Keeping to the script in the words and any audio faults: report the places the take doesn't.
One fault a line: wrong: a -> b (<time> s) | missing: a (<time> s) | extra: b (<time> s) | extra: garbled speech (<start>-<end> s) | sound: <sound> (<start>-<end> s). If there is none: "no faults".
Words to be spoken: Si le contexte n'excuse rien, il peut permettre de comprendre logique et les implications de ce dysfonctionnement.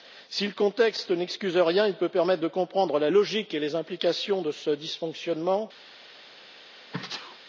extra: la (3.0 s)
sound: sneeze (6.9-7.4 s)